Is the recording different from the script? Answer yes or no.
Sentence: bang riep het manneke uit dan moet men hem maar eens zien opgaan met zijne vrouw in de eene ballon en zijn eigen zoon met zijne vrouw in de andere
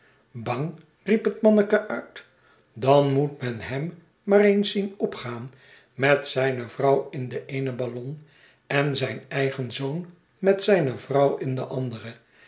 no